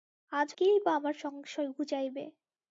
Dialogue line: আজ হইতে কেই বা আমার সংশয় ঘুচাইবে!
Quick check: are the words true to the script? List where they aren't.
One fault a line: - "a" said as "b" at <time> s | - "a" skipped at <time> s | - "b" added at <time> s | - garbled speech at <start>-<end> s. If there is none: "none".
- "হইতে" skipped at 0.5 s